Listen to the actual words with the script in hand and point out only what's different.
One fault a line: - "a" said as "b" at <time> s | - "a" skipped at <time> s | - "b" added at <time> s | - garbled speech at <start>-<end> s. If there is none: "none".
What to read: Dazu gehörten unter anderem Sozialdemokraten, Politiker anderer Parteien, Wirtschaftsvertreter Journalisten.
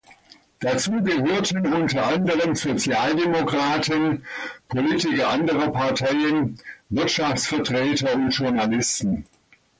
- "und" added at 8.1 s